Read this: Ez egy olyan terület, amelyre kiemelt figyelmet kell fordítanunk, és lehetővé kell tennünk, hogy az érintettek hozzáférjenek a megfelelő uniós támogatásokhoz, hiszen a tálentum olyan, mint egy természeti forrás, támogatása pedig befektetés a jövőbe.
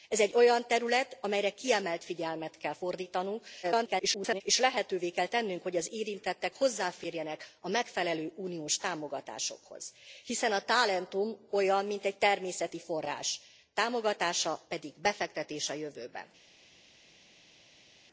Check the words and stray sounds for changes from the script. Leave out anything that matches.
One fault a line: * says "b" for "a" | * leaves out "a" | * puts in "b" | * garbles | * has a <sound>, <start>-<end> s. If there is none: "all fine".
* garbles